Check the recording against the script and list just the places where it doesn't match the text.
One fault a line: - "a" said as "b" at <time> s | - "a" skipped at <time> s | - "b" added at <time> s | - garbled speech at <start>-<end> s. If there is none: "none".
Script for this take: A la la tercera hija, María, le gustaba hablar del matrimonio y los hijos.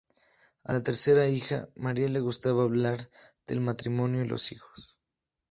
- "la" skipped at 0.8 s